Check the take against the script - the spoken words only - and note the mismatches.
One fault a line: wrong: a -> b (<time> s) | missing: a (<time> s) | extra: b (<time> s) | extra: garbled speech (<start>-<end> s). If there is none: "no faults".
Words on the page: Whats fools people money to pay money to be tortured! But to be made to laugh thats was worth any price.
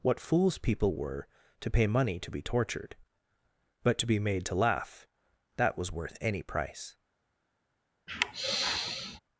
wrong: Whats -> What (0.0 s)
wrong: money -> were (0.9 s)
wrong: thats -> that (5.6 s)